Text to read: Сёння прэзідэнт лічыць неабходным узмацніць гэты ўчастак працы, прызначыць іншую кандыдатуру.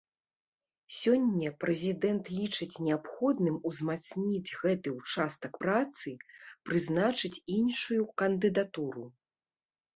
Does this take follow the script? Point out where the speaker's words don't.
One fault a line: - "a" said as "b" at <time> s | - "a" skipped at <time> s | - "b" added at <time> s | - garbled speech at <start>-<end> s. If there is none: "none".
none